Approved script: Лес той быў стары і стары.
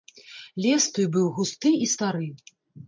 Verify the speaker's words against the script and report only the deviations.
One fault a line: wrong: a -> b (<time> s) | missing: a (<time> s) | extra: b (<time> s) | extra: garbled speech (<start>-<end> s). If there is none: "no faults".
wrong: стары -> густы (1.4 s)